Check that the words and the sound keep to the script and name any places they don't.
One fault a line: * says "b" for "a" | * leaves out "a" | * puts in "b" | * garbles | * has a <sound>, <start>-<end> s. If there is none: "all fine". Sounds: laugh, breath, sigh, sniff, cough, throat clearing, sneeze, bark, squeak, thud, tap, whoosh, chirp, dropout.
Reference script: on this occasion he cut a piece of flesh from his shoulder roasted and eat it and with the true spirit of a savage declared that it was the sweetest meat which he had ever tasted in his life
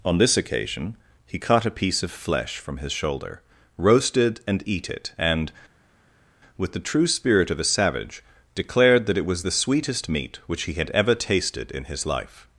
all fine